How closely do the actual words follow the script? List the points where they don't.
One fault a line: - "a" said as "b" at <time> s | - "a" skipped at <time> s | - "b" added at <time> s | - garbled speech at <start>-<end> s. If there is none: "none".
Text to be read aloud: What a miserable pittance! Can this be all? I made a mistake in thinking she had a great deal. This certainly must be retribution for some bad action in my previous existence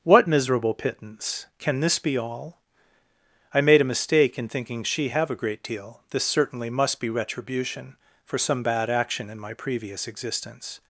- "a" skipped at 0.3 s
- "had" said as "have" at 5.1 s